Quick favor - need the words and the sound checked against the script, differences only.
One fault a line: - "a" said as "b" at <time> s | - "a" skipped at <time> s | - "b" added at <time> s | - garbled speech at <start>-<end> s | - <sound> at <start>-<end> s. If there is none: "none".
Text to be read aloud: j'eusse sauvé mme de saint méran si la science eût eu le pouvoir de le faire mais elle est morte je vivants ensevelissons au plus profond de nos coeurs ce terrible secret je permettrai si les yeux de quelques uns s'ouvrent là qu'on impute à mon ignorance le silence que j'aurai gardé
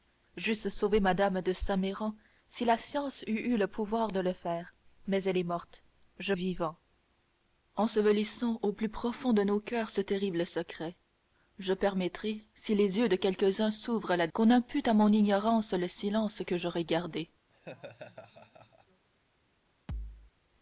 - laugh at 17.5-19.0 s
- thud at 19.9-20.3 s